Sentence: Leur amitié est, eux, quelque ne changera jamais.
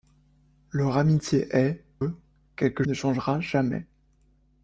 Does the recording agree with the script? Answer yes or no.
yes